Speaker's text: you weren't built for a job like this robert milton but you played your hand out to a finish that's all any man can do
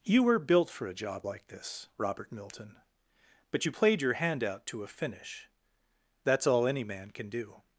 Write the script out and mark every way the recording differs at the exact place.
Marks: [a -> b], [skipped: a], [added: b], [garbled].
you [weren't -> were] built for a job like this robert milton but you played your hand out to a finish that's all any man can do